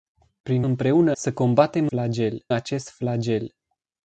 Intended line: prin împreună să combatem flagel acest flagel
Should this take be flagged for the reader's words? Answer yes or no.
no